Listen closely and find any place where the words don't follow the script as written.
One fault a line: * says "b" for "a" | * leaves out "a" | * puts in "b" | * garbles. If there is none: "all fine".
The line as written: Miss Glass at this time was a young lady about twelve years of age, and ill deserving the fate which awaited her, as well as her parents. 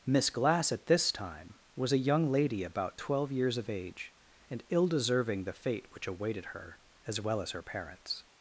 all fine